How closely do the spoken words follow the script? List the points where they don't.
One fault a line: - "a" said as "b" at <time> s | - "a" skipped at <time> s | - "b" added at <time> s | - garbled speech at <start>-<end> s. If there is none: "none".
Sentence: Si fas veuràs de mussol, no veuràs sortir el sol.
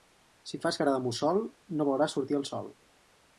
- "veuràs" said as "cara" at 0.8 s